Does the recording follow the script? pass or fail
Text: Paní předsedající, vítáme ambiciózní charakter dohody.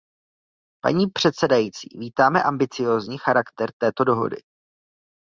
fail